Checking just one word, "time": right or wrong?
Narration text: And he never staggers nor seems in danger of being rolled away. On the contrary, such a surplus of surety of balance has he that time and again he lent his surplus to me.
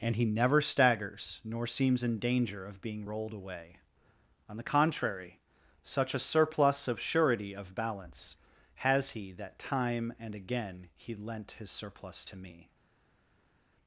right